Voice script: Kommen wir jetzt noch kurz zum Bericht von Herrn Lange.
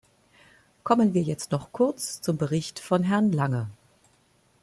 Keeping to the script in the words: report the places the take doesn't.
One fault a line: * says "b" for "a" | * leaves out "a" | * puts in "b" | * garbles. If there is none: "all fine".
all fine